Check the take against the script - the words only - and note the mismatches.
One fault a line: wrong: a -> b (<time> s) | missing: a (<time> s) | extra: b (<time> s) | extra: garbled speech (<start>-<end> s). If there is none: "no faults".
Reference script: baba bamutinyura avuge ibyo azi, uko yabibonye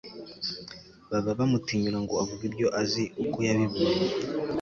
extra: ngo (2.0 s)